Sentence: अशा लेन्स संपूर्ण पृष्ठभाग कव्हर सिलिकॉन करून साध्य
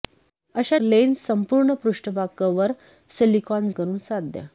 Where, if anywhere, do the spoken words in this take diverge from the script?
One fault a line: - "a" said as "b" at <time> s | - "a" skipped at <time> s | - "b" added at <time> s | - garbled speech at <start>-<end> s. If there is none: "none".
none